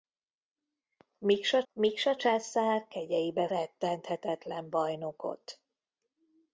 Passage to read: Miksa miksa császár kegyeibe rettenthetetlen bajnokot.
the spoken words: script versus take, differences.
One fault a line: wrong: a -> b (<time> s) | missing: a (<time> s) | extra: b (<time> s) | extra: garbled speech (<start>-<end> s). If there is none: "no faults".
no faults